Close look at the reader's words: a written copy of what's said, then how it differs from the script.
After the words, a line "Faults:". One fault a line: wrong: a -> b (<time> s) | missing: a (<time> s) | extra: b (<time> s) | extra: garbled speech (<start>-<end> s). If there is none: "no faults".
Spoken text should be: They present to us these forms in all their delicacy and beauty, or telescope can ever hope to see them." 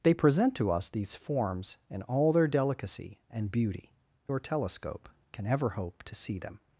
They present to us these forms in all their delicacy and beauty, or telescope can ever hope to see them."
Faults:
no faults